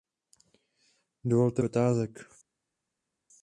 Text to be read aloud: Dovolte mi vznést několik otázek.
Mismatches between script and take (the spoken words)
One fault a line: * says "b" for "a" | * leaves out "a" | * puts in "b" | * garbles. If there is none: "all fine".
* leaves out "mi vznést několik"